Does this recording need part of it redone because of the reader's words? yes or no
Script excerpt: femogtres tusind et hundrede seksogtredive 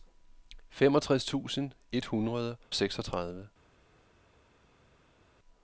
no